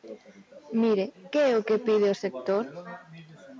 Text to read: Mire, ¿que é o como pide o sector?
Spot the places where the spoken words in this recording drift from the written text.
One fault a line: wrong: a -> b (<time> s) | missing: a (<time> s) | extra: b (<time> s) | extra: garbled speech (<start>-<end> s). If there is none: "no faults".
wrong: como -> que (1.7 s)